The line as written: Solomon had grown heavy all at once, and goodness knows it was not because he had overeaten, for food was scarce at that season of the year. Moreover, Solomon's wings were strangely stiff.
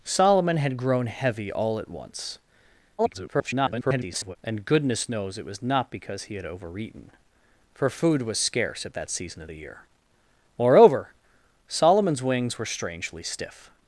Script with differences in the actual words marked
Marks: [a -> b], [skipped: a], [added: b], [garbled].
Solomon had grown heavy all at once, [garbled] and goodness knows it was not because he had overeaten, for food was scarce at that season of the year. Moreover, Solomon's wings were strangely stiff.